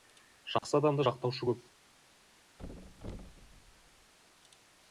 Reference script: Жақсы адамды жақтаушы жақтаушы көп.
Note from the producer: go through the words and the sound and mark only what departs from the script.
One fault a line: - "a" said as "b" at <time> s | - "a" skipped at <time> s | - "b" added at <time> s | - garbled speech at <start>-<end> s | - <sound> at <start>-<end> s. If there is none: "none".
- dropout at 0.6-0.6 s
- "жақтаушы" skipped at 1.5 s
- thud at 2.6-4.1 s